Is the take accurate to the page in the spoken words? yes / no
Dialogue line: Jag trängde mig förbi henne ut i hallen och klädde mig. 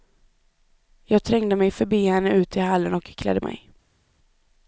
yes